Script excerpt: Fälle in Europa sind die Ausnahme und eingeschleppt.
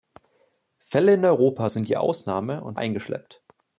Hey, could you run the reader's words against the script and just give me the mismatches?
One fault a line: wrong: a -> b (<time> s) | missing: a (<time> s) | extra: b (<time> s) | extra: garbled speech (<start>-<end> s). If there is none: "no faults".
no faults